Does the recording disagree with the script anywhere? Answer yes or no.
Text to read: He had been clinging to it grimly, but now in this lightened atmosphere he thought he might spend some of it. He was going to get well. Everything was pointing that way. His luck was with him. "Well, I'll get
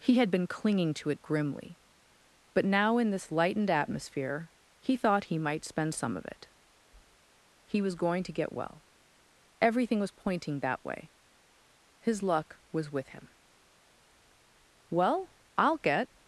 no